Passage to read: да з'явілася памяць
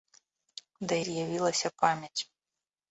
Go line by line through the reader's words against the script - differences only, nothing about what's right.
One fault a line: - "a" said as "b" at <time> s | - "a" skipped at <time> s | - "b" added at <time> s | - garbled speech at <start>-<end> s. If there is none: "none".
none